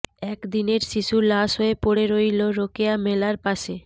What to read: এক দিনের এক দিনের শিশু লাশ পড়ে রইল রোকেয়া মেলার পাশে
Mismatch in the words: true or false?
true